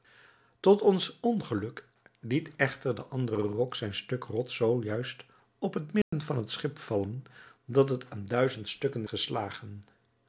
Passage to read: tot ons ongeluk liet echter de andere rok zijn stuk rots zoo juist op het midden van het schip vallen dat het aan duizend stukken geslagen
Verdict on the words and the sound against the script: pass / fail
fail